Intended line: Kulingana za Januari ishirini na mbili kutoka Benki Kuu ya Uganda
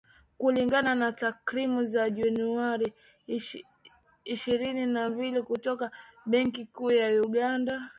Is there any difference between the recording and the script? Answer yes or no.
yes